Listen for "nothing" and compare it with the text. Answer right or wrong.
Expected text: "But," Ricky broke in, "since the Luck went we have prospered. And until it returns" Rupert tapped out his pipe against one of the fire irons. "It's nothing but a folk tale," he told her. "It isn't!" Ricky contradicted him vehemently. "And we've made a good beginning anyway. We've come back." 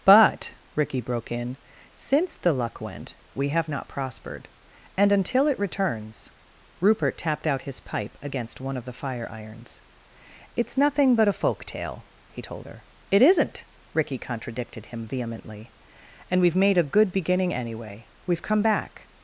right